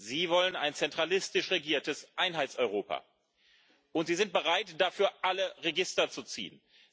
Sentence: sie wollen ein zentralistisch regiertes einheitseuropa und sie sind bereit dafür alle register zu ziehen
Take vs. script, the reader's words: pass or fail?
pass